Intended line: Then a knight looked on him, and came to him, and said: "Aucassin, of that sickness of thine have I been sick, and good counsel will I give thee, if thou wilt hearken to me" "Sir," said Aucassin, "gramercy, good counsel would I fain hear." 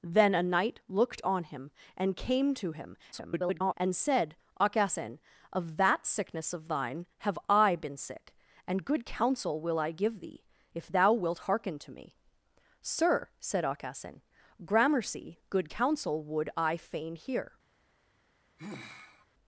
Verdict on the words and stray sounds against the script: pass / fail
fail